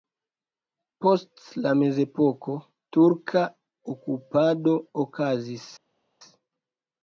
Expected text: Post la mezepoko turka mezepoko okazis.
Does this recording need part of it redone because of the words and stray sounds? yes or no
yes